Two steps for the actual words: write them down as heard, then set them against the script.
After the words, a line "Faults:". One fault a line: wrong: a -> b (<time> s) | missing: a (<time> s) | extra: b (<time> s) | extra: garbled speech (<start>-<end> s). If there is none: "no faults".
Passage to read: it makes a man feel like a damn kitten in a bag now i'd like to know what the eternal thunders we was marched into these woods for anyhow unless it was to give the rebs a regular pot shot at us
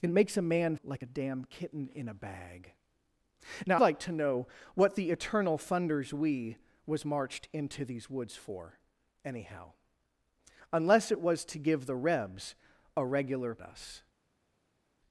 it makes a man like a damn kitten in a bag now like to know what the eternal thunders we was marched into these woods for anyhow unless it was to give the rebs a regular us
Faults:
missing: feel (0.8 s)
missing: i'd (3.8 s)
missing: pot shot at (13.6 s)